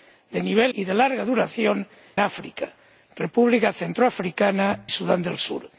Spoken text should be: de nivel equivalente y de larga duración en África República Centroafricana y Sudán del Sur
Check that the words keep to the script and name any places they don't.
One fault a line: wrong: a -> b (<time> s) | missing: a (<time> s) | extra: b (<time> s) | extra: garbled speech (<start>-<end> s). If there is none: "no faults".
missing: equivalente (0.7 s)
missing: en (1.9 s)
missing: y (4.8 s)